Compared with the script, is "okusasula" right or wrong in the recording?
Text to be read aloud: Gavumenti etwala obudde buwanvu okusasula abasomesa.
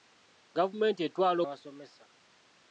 wrong